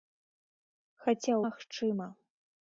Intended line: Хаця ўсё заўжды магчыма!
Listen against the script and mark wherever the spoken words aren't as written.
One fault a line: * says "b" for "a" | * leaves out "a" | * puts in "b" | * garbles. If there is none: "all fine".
* leaves out "ўсё заўжды"